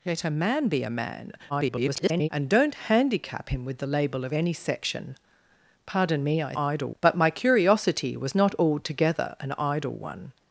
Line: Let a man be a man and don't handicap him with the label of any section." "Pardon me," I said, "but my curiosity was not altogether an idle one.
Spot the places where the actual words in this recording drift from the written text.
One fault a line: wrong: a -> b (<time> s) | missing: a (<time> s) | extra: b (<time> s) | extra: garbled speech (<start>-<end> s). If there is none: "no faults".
extra: garbled speech (1.5-2.3 s)
wrong: said -> idle (6.6 s)